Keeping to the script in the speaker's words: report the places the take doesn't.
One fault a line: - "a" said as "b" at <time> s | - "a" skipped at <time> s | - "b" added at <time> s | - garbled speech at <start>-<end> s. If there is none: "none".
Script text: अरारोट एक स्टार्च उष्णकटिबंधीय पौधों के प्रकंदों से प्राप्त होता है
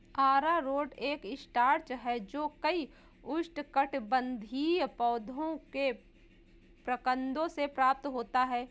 - "है जो कई" added at 1.9 s